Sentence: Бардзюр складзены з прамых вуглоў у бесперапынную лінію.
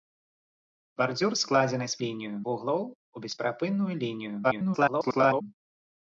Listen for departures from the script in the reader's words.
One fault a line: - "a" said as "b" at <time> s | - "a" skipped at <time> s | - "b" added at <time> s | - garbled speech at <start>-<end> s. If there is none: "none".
- "прамых" said as "лінію" at 2.0 s
- garbled speech at 4.4-5.4 s